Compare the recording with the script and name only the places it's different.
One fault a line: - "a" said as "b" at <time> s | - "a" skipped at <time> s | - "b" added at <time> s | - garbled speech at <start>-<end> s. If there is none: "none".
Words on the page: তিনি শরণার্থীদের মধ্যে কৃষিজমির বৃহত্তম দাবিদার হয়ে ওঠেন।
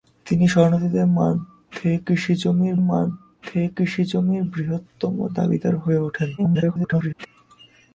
- "মধ্যে কৃষিজমির" added at 2.8 s
- garbled speech at 6.4-7.3 s